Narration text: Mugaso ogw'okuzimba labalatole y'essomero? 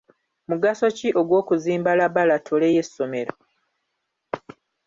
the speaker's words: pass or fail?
fail